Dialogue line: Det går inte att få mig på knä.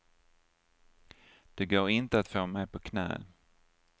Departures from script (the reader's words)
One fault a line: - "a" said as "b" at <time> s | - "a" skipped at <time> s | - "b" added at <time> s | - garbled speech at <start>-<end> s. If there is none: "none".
none